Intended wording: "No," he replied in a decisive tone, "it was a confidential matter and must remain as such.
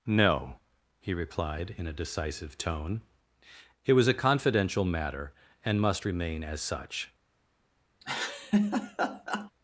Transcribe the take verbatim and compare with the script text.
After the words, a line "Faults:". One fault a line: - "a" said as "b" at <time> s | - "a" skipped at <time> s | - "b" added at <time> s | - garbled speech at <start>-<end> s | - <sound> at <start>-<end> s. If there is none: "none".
"No," he replied in a decisive tone, "it was a confidential matter and must remain as such.
Faults:
- laugh at 8.0-9.5 s